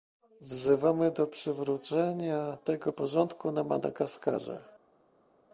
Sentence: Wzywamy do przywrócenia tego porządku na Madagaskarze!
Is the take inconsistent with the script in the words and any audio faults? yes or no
no